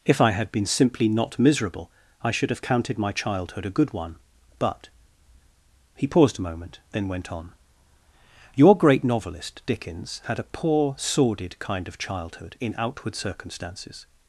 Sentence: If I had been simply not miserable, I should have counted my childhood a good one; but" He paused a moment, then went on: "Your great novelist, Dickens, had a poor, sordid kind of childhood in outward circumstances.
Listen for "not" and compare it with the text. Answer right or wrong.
right